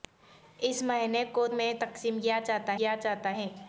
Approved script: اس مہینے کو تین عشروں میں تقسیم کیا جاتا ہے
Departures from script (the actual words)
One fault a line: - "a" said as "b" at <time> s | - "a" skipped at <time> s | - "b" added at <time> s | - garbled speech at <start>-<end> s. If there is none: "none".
- "تین عشروں میں تقسیم" said as "میں تقسیم کیا جاتا" at 1.5 s